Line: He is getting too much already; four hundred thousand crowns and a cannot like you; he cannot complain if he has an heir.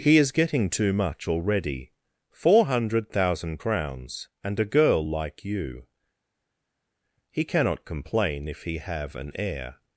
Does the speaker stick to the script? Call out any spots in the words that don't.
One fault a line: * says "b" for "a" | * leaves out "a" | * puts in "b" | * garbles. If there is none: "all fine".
* says "girl" for "cannot"
* says "have" for "has"